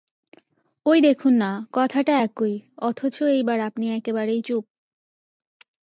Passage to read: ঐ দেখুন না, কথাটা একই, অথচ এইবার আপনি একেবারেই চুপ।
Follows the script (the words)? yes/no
yes